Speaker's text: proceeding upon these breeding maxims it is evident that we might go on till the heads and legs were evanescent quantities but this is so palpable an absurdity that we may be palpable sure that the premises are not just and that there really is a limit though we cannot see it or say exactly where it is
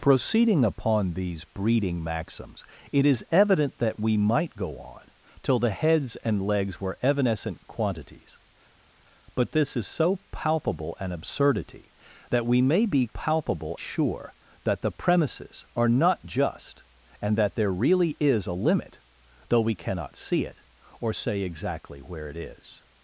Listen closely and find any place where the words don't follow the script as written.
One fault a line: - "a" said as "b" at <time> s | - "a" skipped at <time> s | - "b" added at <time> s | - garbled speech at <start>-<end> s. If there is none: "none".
none